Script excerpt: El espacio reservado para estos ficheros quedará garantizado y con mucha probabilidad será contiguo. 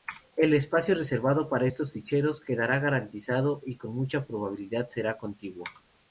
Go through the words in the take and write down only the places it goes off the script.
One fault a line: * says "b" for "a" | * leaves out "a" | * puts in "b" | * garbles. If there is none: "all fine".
all fine